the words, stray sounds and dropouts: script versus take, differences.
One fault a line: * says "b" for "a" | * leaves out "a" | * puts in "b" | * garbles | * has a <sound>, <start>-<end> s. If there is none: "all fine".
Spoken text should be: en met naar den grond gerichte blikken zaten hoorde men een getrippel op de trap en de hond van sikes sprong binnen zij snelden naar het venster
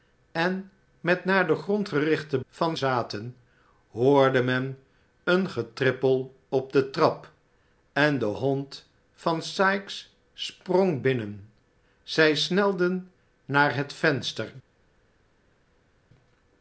* says "van" for "blikken"